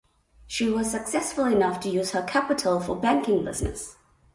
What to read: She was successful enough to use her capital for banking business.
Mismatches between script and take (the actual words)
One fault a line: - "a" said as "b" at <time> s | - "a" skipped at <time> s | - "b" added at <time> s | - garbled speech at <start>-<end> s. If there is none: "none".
none